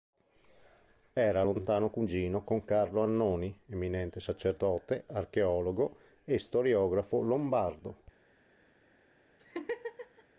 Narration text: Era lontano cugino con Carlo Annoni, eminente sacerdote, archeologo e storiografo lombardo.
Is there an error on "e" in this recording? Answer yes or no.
no